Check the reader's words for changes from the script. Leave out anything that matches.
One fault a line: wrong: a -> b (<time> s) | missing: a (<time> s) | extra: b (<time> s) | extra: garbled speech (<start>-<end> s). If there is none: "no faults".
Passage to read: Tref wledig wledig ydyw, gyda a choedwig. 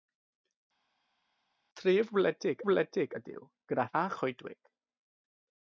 no faults